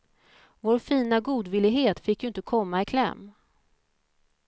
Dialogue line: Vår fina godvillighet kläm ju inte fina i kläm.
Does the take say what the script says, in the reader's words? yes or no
no